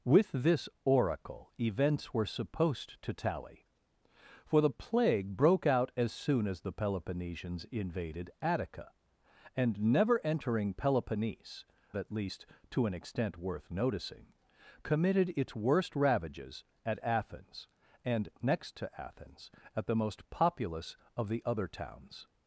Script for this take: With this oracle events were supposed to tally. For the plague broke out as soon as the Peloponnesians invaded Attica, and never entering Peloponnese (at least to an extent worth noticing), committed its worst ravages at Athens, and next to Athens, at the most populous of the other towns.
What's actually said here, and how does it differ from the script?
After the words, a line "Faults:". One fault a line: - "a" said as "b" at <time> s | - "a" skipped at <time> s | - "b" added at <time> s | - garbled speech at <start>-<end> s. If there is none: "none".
With this oracle events were supposed to tally. For the plague broke out as soon as the Peloponnesians invaded Attica, and never entering Peloponnese (at least to an extent worth noticing), committed its worst ravages at Athens, and next to Athens, at the most populous of the other towns.
Faults:
none